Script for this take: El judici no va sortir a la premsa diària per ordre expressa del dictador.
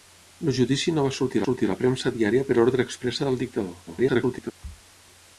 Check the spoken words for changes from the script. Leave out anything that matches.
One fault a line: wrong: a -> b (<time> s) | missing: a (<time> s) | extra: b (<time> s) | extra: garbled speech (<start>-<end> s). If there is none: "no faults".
extra: sortir (1.4 s)
extra: garbled speech (3.9-4.5 s)